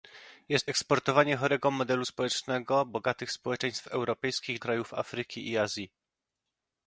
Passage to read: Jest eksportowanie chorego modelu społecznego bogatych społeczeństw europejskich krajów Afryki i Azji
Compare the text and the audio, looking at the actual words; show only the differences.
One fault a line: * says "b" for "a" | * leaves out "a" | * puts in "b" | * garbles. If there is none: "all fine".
all fine